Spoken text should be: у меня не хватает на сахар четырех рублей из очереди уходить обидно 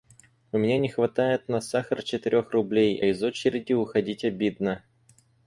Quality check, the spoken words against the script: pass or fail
pass